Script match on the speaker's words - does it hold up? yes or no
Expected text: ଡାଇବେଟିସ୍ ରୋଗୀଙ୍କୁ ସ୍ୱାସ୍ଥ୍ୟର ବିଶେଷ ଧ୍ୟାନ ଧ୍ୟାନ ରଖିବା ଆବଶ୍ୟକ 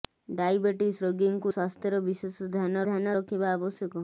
yes